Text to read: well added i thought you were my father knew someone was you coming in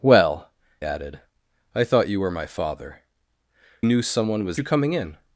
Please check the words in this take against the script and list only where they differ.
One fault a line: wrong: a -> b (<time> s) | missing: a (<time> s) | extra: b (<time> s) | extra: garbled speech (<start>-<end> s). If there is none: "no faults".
no faults